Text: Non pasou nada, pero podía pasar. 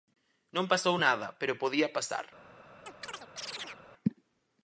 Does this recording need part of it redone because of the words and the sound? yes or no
yes